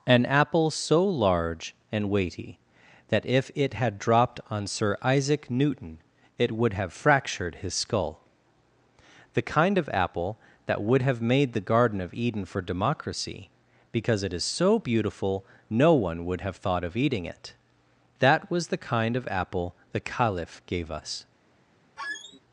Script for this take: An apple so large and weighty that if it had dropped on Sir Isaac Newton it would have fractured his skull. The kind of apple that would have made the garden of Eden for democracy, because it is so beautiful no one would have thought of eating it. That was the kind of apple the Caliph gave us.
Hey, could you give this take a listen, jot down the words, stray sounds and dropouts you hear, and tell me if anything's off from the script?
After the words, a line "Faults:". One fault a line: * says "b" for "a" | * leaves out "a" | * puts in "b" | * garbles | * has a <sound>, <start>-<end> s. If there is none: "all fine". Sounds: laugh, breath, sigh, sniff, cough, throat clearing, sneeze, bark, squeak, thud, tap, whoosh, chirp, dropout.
An apple so large and weighty that if it had dropped on Sir Isaac Newton it would have fractured his skull. The kind of apple that would have made the garden of Eden for democracy, because it is so beautiful no one would have thought of eating it. That was the kind of apple the Caliph gave us.
Faults:
* has a squeak, 22.0-22.4 s